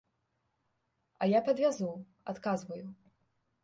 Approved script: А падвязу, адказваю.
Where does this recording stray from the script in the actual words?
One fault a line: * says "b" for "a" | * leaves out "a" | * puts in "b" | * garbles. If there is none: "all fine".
* puts in "я"